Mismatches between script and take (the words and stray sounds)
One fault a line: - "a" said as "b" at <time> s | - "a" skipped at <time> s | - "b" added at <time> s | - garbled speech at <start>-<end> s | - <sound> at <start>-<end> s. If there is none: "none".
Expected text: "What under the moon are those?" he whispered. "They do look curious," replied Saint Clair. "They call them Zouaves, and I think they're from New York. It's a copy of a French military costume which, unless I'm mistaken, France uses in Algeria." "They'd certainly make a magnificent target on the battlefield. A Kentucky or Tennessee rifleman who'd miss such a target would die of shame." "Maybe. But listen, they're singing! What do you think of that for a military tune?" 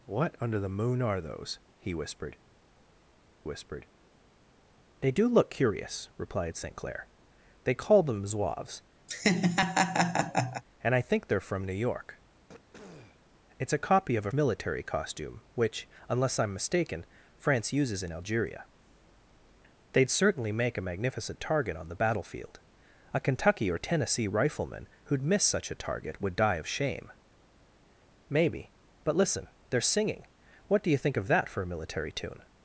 - "whispered" added at 3.4 s
- laugh at 9.1-10.6 s
- throat clearing at 12.5-13.2 s
- "French" skipped at 14.3 s